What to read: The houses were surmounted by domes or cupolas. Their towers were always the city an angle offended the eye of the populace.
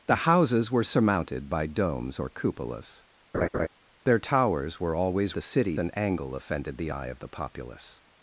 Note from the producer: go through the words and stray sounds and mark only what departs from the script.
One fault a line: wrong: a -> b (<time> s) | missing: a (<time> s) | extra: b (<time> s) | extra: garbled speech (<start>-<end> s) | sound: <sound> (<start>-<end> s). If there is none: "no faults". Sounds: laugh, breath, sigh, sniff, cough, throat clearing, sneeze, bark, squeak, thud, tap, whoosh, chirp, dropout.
sound: laugh (3.3-3.7 s)